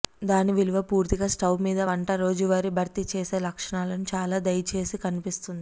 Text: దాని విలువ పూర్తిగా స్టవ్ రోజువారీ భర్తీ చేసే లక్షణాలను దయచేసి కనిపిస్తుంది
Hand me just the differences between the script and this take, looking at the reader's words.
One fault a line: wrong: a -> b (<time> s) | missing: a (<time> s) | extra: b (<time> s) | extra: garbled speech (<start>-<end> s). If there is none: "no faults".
extra: మీద వంట (1.6 s)
extra: చాలా (4.1 s)